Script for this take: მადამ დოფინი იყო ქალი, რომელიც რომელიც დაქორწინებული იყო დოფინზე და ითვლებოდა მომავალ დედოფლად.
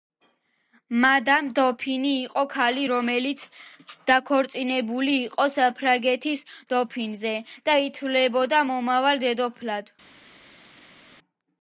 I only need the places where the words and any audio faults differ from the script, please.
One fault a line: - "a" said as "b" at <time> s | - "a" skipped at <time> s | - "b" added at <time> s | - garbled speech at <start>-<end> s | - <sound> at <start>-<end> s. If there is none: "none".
- "რომელიც" skipped at 3.4 s
- "საფრანგეთის" added at 5.6 s